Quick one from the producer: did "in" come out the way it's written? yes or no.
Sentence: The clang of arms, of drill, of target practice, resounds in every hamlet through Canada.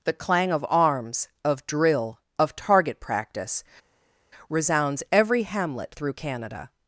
no